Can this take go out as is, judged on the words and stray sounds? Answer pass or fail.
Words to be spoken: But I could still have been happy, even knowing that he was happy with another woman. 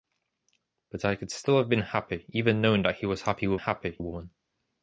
fail